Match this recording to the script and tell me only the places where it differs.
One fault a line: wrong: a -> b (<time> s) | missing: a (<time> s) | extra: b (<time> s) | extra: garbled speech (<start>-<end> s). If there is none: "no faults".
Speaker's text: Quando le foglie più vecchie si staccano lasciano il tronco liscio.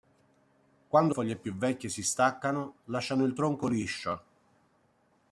missing: le (1.1 s)